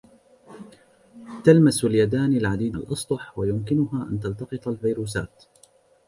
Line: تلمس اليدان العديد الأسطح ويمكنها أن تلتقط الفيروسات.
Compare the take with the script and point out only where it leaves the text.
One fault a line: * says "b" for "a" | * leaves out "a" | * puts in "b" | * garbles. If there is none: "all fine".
all fine